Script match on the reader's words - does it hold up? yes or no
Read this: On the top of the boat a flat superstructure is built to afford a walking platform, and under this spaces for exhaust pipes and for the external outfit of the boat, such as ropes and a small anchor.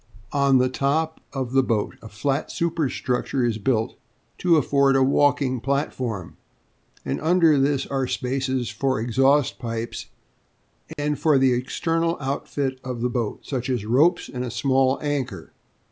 no